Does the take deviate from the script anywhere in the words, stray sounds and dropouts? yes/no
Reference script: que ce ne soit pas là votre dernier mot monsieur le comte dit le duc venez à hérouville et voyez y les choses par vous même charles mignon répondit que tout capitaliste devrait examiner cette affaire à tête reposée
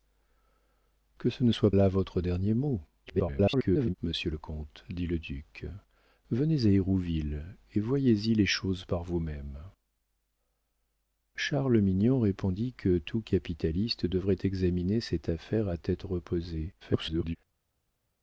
yes